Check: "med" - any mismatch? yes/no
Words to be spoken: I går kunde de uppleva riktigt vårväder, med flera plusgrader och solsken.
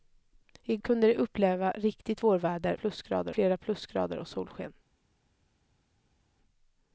yes